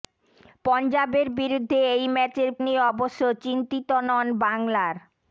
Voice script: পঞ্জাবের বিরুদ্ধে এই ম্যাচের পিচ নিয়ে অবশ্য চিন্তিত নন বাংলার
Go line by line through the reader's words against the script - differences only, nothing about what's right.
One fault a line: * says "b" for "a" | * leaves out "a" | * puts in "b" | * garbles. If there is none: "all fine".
* leaves out "পিচ"